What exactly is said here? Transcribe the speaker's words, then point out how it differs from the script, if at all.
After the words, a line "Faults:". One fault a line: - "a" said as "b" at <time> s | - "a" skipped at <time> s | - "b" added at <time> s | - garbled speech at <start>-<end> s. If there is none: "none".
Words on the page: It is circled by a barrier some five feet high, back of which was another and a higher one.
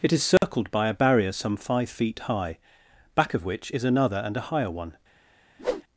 It is circled by a barrier some five feet high, back of which is another and a higher one.
Faults:
- "was" said as "is" at 3.7 s